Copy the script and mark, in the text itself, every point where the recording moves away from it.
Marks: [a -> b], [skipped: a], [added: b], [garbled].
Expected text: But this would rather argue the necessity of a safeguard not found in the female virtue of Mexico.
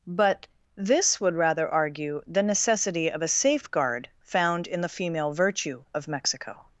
But this would rather argue the necessity of a safeguard [skipped: not] found in the female virtue of Mexico.